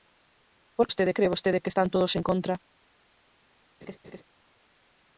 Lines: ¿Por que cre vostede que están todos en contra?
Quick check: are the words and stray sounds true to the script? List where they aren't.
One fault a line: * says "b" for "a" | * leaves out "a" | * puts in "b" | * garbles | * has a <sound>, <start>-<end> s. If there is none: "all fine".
* says "vostede" for "que"
* has a laugh, 3.8-4.2 s